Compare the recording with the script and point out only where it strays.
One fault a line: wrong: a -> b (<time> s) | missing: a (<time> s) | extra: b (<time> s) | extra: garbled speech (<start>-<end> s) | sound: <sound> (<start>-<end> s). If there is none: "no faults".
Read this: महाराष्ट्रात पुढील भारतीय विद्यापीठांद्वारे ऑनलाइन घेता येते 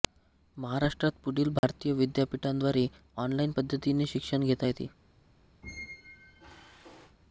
sound: dropout (1.6-1.6 s)
extra: पद्धतीने शिक्षण (3.6 s)
sound: squeak (5.6-7.2 s)